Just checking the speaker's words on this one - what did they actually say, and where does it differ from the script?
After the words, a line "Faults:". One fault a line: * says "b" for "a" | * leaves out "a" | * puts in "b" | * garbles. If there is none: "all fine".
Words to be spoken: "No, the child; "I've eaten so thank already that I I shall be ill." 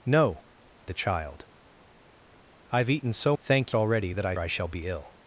"No, the child; "I've eaten so thank already that I I shall be ill."
Faults:
all fine